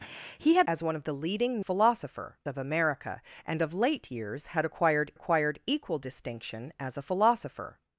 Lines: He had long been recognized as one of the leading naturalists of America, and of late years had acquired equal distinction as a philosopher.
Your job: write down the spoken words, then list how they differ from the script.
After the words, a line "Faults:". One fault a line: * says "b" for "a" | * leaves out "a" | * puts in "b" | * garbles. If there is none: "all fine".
He had as one of the leading philosopher of America, and of late years had acquired acquired equal distinction as a philosopher.
Faults:
* leaves out "long been recognized"
* says "philosopher" for "naturalists"
* puts in "acquired"